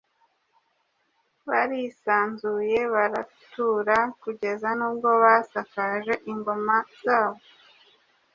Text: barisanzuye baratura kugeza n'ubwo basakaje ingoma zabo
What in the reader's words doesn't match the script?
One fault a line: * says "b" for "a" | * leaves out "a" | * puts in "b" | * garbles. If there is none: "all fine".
all fine